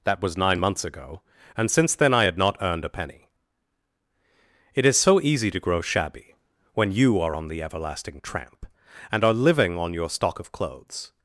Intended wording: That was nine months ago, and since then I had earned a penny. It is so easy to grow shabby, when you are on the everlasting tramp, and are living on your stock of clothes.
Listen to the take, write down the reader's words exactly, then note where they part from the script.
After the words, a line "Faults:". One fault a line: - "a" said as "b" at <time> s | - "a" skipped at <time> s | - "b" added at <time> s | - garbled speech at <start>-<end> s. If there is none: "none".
That was nine months ago, and since then I had not earned a penny. It is so easy to grow shabby, when you are on the everlasting tramp, and are living on your stock of clothes.
Faults:
- "not" added at 2.4 s